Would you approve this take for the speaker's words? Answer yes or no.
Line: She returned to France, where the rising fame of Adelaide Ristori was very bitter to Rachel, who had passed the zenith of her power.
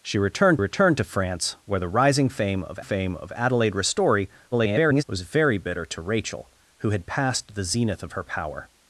no